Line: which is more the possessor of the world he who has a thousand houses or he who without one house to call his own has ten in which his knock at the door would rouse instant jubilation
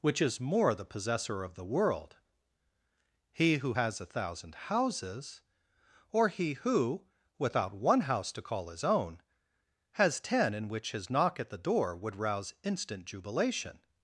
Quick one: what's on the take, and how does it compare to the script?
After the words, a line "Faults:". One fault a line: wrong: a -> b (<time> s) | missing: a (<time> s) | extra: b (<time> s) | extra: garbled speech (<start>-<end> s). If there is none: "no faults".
which is more the possessor of the world he who has a thousand houses or he who without one house to call his own has ten in which his knock at the door would rouse instant jubilation
Faults:
no faults